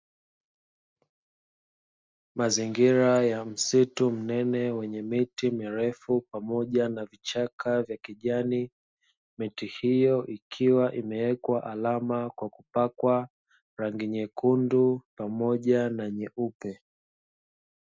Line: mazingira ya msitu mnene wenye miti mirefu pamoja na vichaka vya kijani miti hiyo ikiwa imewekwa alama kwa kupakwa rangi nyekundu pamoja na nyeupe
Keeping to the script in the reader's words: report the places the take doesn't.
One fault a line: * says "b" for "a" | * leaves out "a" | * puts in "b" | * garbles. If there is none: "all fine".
all fine